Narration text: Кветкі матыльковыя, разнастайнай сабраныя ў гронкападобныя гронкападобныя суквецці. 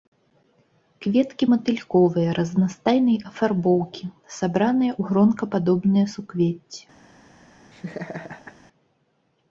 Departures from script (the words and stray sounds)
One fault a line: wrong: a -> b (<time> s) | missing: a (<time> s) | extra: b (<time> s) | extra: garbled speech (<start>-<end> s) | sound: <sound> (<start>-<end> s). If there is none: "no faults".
extra: афарбоўкі (3.3 s)
missing: гронкападобныя (6.1 s)
sound: laugh (7.7-8.6 s)